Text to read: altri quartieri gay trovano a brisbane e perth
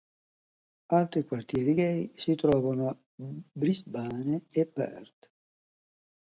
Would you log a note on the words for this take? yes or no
yes